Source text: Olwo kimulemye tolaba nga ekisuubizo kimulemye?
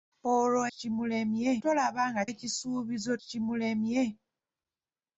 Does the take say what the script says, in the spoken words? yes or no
yes